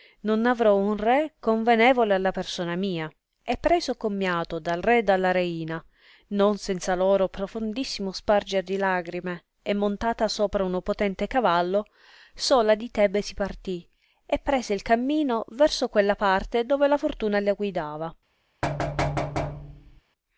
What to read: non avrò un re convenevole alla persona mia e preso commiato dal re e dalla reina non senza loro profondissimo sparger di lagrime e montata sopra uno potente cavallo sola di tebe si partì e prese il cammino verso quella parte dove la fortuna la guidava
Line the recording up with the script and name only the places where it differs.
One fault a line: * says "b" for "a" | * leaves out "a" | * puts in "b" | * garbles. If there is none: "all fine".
all fine